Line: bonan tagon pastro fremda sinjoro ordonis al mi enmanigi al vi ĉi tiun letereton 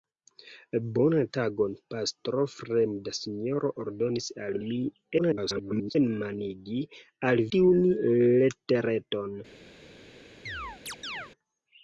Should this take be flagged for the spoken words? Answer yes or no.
yes